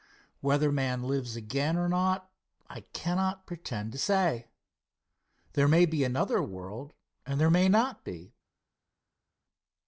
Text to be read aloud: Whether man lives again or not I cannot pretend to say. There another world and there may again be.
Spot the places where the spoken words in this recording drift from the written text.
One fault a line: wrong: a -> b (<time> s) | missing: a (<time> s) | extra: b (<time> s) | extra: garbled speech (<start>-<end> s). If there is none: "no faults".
extra: may be (5.7 s)
wrong: again -> not (7.7 s)